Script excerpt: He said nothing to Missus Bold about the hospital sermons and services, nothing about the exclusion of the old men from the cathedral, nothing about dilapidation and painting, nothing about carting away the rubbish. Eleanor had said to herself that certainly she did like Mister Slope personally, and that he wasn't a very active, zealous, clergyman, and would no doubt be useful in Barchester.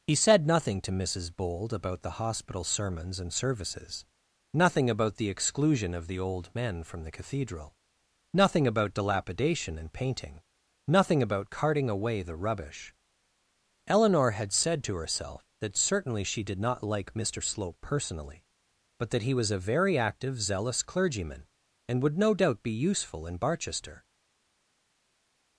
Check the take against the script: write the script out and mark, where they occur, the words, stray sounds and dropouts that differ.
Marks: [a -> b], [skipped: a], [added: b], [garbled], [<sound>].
He said nothing to Missus Bold about the hospital sermons and services, nothing about the exclusion of the old men from the cathedral, nothing about dilapidation and painting, nothing about carting away the rubbish. Eleanor had said to herself that certainly she did [added: not] like Mister Slope personally, [and -> but] that he [wasn't -> was] a very active, zealous, clergyman, and would no doubt be useful in Barchester.